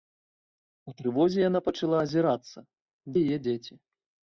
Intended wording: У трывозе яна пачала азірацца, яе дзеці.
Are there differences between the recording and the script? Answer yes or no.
no